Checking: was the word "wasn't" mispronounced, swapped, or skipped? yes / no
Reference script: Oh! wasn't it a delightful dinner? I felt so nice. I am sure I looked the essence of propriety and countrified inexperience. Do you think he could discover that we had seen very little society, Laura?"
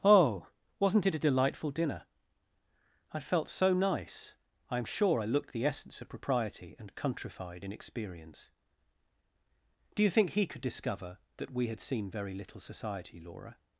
no